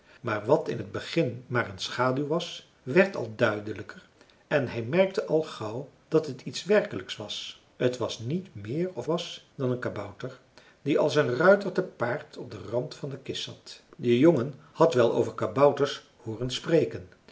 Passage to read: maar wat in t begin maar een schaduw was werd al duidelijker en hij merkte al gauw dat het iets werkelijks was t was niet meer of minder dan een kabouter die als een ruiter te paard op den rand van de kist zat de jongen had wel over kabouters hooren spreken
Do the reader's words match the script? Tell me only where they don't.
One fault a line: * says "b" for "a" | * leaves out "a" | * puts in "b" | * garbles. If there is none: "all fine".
* says "was" for "minder"